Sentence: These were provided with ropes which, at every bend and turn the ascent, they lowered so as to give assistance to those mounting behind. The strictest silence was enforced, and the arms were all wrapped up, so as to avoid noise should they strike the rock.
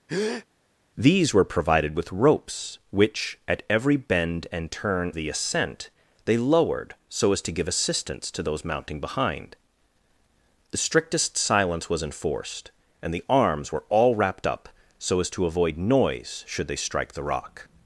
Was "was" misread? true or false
false